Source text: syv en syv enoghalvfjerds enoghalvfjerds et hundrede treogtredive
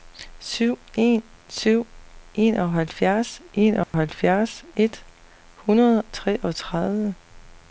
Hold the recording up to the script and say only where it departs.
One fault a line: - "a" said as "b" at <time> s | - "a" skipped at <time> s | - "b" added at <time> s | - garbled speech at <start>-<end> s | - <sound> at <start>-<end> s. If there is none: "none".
- dropout at 3.8-3.9 s